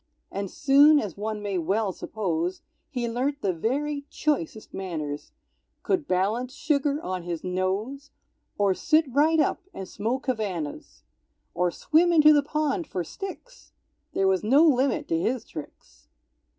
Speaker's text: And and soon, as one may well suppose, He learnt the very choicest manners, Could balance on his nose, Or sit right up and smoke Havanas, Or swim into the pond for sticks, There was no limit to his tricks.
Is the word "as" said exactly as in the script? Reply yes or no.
yes